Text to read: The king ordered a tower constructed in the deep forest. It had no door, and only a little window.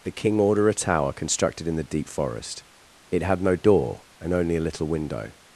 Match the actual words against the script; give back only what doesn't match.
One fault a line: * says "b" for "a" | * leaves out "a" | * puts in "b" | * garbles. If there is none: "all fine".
* says "order" for "ordered"